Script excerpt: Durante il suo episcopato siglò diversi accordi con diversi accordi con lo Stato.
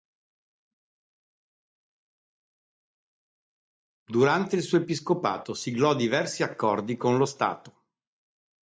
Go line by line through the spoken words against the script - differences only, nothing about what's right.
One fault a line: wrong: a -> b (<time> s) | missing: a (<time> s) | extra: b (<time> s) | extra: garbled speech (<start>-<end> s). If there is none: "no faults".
missing: diversi accordi con (7.2 s)